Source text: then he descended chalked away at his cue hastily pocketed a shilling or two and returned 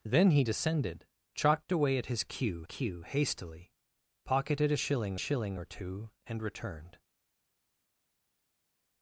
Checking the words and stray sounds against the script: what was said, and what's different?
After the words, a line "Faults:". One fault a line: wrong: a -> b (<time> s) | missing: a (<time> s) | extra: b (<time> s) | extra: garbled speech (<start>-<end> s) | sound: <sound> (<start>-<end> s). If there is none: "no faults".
then he descended chalked away at his cue cue hastily pocketed a shilling shilling or two and returned
Faults:
extra: cue (2.6 s)
extra: shilling (5.2 s)